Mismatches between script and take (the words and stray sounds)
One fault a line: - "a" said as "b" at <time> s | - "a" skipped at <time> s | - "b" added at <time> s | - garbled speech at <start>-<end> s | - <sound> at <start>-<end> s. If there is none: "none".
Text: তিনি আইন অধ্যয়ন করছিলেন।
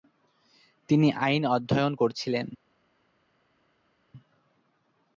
none